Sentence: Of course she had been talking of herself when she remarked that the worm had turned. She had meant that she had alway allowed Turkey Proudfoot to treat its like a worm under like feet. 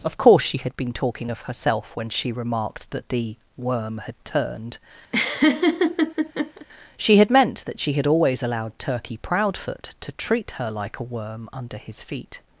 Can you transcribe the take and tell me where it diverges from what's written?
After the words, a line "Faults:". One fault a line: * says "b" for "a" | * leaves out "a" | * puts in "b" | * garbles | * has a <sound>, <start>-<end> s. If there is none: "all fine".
Of course she had been talking of herself when she remarked that the worm had turned. She had meant that she had always allowed Turkey Proudfoot to treat her like a worm under his feet.
Faults:
* has a laugh, 5.1-6.7 s
* says "always" for "alway"
* says "her" for "its"
* says "his" for "like"